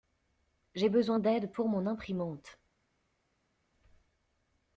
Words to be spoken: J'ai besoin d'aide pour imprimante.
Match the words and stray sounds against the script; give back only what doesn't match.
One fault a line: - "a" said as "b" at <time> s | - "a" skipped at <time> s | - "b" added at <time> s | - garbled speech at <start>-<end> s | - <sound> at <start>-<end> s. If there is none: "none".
- "mon" added at 1.7 s